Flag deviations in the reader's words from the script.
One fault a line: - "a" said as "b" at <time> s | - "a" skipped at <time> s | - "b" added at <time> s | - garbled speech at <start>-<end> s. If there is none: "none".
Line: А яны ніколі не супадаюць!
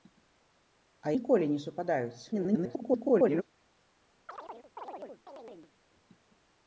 - "яны" skipped at 1.1 s
- garbled speech at 2.3-3.4 s